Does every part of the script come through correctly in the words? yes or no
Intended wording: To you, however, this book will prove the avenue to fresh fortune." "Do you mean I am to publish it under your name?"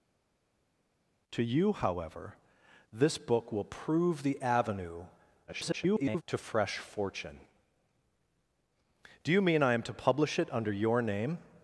no